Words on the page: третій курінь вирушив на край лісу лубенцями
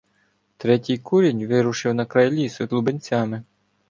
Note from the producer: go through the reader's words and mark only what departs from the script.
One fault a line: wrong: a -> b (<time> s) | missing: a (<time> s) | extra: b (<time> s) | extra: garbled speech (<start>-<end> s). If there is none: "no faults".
no faults